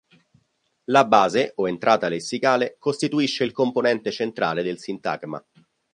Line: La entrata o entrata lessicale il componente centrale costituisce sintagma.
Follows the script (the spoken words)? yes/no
no